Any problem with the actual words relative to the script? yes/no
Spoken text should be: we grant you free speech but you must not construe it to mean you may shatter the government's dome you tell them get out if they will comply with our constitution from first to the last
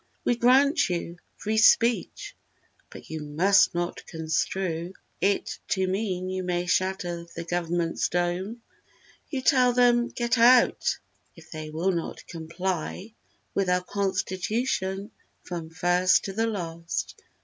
yes